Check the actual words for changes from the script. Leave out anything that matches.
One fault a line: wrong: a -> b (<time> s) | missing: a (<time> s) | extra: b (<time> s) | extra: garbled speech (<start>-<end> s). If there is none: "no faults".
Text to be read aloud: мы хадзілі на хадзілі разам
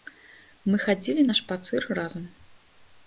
wrong: хадзілі -> шпацыр (1.4 s)